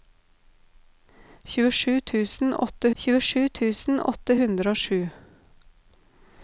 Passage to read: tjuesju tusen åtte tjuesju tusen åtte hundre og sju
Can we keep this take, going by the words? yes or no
yes